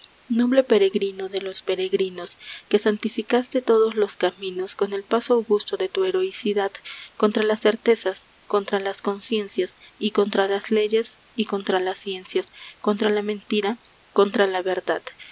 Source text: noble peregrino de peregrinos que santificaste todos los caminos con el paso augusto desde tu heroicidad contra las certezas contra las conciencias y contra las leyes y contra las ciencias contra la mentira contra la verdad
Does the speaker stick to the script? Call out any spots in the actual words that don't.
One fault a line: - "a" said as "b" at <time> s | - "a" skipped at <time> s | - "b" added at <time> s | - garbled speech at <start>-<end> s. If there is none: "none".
- "los" added at 1.4 s
- "desde" said as "de" at 5.8 s